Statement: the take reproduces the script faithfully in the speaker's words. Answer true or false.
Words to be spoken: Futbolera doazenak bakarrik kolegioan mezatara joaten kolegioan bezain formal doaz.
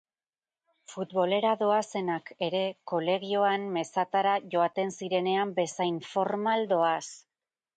false